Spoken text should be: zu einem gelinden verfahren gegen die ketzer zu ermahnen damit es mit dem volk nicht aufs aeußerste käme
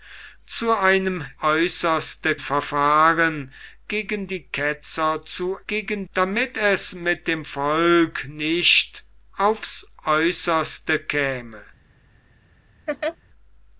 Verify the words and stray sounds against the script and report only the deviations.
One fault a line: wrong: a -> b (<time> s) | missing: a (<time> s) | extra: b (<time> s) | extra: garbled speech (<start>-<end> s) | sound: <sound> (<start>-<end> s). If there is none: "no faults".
wrong: gelinden -> aeußerste (1.4 s)
wrong: ermahnen -> gegen (5.7 s)
sound: laugh (12.9-13.2 s)